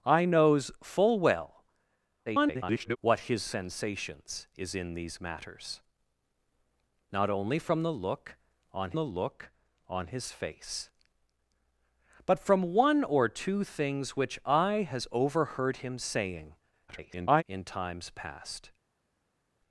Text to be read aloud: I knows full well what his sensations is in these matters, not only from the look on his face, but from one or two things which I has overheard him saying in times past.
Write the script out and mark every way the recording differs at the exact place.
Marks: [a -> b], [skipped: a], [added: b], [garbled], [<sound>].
I knows full well [garbled] what his sensations is in these matters, not only from the look on [added: the look on] his face, but from one or two things which I has overheard him saying [garbled] in times past.